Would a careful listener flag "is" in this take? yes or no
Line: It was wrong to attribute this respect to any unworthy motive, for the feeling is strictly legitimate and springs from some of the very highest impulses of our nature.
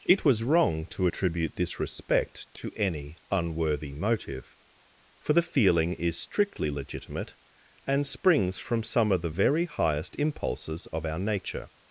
no